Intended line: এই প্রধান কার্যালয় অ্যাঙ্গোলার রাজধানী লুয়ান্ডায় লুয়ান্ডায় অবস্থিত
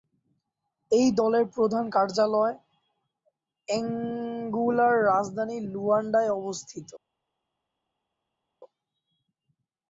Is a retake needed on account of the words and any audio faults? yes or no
yes